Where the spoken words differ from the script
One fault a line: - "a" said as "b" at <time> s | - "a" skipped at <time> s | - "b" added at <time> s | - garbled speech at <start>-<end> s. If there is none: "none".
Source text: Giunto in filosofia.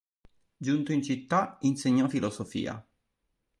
- "città insegnò" added at 1.0 s